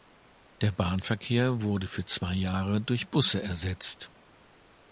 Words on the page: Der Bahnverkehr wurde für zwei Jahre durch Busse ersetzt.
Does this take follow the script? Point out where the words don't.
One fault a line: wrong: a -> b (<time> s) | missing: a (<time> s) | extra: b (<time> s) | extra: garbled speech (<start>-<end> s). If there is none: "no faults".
no faults